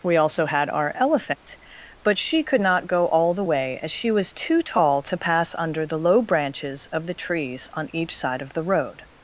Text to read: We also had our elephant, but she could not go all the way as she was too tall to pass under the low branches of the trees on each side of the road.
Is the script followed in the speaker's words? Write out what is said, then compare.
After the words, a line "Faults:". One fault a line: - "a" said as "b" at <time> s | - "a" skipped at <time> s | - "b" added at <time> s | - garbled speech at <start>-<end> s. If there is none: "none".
We also had our elephant, but she could not go all the way as she was too tall to pass under the low branches of the trees on each side of the road.
Faults:
none